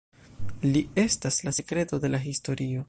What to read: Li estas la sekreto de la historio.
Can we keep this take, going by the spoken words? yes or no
yes